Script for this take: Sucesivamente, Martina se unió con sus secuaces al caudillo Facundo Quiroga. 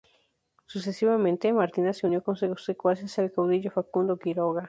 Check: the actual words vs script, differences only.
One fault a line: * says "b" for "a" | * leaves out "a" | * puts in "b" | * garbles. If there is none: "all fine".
all fine